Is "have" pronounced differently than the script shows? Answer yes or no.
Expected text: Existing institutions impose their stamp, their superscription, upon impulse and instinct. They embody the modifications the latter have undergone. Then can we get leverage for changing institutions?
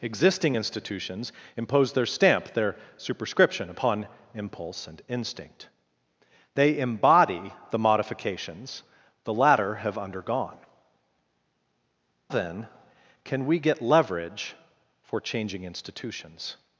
no